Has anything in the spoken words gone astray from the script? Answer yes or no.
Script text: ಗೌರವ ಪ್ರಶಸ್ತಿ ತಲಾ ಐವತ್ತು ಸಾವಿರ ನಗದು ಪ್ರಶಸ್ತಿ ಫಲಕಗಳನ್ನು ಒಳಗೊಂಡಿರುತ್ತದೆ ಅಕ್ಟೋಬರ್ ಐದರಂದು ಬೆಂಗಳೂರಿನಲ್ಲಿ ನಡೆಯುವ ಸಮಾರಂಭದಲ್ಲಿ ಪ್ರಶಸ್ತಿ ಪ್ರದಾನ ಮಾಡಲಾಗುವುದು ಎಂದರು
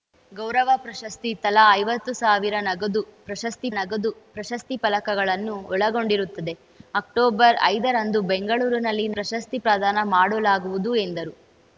yes